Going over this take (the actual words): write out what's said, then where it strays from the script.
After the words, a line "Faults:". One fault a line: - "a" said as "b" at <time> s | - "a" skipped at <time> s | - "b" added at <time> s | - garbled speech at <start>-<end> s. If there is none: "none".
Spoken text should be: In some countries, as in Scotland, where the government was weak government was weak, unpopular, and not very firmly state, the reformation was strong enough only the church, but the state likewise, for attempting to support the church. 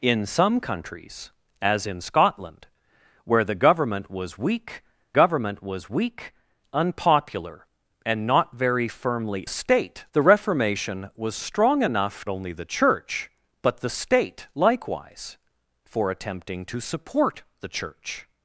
In some countries, as in Scotland, where the government was weak government was weak, unpopular, and not very firmly state, the reformation was strong enough only the church, but the state likewise, for attempting to support the church.
Faults:
none